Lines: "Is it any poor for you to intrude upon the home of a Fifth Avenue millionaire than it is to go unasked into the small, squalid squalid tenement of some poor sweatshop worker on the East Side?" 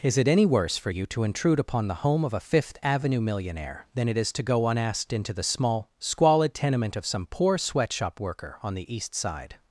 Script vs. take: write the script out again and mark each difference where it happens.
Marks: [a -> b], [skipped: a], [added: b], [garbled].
"Is it any [poor -> worse] for you to intrude upon the home of a Fifth Avenue millionaire than it is to go unasked into the small, squalid [skipped: squalid] tenement of some poor sweatshop worker on the East Side?"